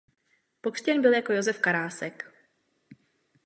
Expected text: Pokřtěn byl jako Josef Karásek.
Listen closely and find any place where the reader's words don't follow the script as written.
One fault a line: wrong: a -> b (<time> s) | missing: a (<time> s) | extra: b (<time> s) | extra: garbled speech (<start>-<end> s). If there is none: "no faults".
no faults